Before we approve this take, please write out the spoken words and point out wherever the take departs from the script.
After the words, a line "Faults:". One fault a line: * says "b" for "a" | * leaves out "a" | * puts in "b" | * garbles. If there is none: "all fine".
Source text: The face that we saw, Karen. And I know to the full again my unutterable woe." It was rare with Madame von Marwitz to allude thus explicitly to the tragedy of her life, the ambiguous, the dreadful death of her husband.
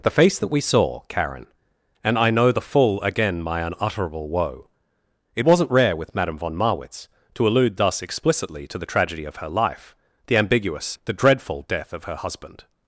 The face that we saw, Karen. And I know the full again my unutterable woe." It wasn't rare with Madame von Marwitz to allude thus explicitly to the tragedy of her life, the ambiguous, the dreadful death of her husband.
Faults:
* leaves out "to"
* says "wasn't" for "was"